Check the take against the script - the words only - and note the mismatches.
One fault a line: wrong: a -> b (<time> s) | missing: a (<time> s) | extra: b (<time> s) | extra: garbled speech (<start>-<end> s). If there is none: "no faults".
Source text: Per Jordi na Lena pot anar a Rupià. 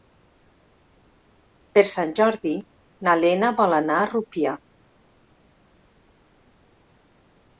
extra: Sant (1.9 s)
wrong: pot -> vol (3.6 s)